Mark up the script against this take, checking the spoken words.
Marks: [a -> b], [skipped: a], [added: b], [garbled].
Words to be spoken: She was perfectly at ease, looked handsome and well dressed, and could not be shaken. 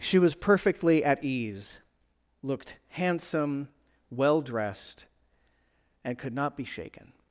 She was perfectly at ease, looked handsome [skipped: and] well dressed, and could not be shaken.